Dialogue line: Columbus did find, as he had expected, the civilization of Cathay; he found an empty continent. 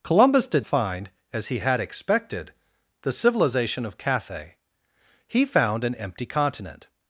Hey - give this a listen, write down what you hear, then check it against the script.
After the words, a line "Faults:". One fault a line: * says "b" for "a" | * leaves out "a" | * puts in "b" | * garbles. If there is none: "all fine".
Columbus did find, as he had expected, the civilization of Cathay; he found an empty continent.
Faults:
all fine